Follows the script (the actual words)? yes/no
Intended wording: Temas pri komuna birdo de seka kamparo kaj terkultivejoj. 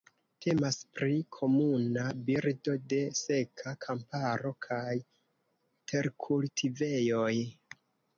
yes